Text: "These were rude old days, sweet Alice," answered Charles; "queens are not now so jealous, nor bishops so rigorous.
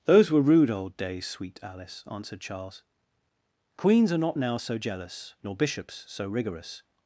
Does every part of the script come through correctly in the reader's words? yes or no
no